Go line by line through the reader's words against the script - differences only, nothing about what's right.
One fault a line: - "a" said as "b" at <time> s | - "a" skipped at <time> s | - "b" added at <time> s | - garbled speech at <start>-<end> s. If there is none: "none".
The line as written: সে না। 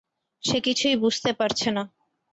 - "কিছুই বুঝতে পারছে" added at 0.7 s